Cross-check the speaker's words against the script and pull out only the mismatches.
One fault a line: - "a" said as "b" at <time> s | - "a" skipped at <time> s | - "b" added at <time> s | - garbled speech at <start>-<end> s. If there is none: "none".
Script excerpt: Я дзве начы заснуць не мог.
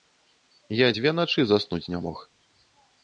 none